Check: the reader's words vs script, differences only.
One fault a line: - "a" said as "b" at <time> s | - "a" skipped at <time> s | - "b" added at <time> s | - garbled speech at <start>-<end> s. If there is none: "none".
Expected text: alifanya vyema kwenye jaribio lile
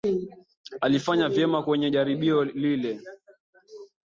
none